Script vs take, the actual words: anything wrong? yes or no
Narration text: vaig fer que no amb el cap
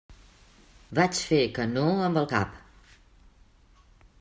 no